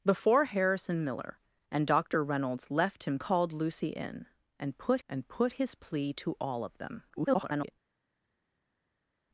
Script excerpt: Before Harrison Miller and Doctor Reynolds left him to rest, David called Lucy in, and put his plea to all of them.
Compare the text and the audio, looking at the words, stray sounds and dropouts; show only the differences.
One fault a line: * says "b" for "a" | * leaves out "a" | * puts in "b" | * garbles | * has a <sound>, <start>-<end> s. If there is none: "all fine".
* leaves out "to rest David"
* puts in "and put"
* garbles